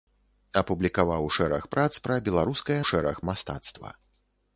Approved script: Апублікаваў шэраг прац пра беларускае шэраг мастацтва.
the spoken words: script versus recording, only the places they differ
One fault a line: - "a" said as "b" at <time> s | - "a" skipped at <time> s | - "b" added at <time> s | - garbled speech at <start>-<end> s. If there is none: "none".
none